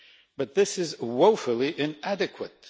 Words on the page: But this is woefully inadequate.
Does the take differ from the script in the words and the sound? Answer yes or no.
no